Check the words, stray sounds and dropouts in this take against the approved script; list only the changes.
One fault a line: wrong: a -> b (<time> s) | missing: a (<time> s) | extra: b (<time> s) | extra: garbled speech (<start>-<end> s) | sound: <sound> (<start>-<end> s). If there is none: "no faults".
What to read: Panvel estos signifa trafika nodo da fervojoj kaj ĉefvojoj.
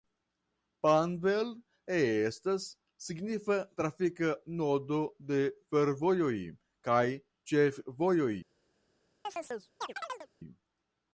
wrong: estos -> estas (1.9 s)
wrong: da -> de (5.3 s)
sound: chirp (9.2-10.3 s)